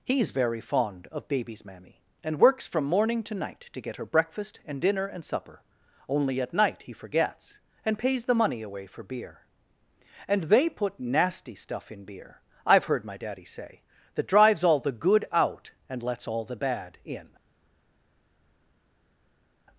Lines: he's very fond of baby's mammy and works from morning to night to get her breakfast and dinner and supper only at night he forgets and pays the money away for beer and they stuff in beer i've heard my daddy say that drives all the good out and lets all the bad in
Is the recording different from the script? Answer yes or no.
yes